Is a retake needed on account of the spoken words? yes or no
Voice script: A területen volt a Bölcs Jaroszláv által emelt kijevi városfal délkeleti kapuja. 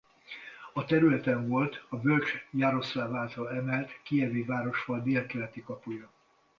no